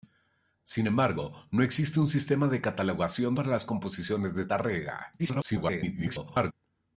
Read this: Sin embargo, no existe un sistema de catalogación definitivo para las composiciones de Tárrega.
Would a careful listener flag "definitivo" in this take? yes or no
yes